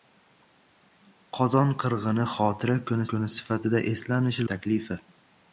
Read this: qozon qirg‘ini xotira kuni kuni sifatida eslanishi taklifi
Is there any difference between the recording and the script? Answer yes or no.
no